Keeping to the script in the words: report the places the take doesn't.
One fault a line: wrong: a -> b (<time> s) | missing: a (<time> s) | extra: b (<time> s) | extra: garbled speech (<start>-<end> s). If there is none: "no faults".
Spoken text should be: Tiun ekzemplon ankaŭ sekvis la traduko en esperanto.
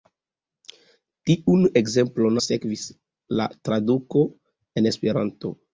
missing: ankaŭ (2.4 s)